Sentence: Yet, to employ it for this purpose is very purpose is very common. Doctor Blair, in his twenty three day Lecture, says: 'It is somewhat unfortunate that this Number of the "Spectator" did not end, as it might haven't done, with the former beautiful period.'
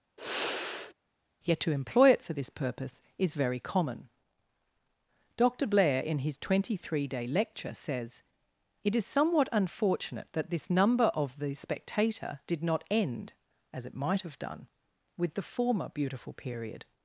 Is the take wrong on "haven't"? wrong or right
wrong